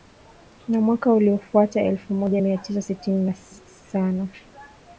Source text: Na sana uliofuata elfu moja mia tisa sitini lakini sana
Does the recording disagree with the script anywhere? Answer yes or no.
yes